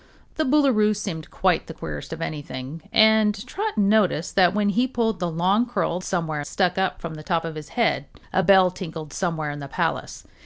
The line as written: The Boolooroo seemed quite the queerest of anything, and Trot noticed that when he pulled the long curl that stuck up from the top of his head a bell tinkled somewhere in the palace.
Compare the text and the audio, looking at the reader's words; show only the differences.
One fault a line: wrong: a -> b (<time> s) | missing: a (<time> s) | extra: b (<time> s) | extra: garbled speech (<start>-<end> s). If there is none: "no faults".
wrong: that -> somewhere (6.0 s)